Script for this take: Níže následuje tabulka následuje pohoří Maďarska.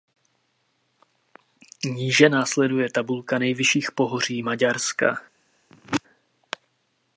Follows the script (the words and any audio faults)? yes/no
no